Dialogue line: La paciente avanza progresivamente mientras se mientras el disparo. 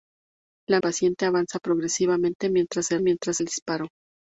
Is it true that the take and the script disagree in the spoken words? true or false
false